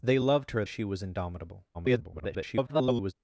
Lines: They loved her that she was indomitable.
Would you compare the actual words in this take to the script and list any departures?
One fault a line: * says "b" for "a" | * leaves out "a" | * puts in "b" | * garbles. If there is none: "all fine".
* leaves out "that"
* garbles